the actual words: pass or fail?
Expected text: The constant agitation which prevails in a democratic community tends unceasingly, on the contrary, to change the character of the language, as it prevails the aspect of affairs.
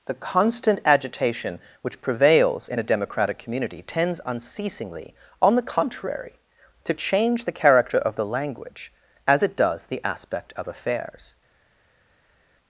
fail